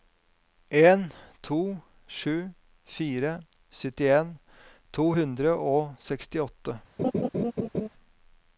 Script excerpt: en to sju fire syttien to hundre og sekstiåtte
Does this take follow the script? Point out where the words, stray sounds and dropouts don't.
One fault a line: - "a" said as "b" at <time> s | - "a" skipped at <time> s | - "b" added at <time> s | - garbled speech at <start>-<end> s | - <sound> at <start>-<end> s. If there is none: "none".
- laugh at 7.0-7.9 s